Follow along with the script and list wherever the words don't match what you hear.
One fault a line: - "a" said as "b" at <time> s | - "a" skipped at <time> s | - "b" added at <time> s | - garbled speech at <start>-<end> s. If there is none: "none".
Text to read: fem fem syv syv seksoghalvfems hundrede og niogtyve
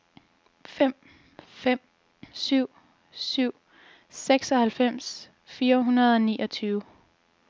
- "fire" added at 5.4 s